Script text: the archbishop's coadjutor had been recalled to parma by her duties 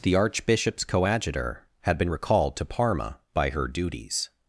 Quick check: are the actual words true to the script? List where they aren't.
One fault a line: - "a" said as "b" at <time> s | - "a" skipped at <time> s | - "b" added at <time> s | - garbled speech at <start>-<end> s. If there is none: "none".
none